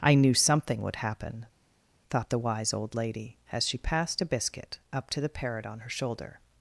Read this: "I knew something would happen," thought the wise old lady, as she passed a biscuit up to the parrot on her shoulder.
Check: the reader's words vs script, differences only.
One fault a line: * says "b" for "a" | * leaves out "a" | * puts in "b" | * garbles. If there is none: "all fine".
all fine